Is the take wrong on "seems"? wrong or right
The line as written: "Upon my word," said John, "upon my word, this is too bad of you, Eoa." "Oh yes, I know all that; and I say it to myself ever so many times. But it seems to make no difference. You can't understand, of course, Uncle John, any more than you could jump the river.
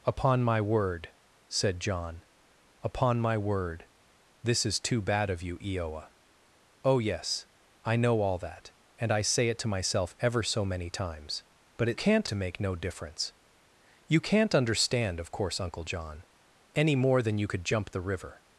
wrong